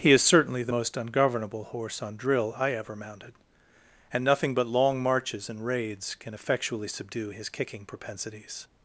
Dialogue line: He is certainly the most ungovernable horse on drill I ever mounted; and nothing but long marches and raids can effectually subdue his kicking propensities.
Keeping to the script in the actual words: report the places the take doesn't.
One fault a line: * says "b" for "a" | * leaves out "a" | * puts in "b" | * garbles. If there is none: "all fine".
all fine